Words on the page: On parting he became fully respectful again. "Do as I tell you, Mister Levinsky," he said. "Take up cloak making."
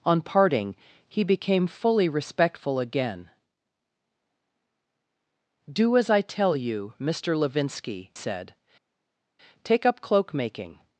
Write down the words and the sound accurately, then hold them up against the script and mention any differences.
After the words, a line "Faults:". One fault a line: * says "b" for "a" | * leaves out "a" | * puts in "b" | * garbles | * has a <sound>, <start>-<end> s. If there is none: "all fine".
On parting he became fully respectful again. "Do as I tell you, Mister Levinsky," said. "Take up cloak making."
Faults:
* leaves out "he"